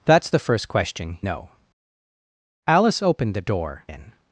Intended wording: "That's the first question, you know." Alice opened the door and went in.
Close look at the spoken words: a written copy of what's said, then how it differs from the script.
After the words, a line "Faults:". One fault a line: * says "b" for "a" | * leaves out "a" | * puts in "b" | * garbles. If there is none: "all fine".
"That's the first question, know." Alice opened the door in.
Faults:
* leaves out "you"
* leaves out "and went"